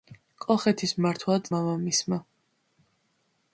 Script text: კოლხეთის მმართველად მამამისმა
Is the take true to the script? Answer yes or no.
yes